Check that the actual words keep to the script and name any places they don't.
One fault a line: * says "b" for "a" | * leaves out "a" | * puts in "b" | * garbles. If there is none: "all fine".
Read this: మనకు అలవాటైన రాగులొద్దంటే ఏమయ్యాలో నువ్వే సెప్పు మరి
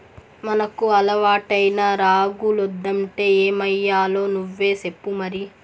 all fine